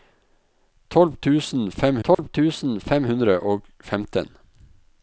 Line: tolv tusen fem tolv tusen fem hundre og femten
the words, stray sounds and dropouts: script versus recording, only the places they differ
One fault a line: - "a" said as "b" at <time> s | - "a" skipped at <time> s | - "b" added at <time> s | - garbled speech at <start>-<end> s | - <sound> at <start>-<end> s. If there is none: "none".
- dropout at 2.1-2.2 s